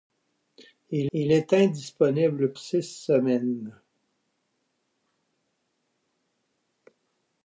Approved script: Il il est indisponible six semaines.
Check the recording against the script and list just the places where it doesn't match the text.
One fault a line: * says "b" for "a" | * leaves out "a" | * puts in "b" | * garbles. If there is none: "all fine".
all fine